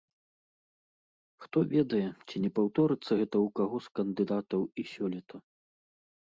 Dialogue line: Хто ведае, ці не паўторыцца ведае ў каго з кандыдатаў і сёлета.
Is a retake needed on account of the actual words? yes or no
yes